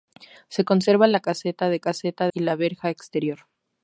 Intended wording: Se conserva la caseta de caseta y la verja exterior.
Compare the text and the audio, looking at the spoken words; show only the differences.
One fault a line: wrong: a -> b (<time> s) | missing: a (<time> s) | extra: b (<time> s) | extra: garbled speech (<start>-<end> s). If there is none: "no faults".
no faults